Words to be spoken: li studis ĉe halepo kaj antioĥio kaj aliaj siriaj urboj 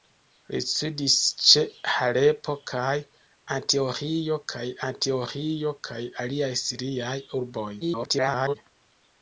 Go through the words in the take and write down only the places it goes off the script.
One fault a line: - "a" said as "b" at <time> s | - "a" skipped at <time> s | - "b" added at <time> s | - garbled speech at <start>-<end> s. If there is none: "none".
- "antioĥio kaj" added at 4.9 s
- garbled speech at 7.8-8.6 s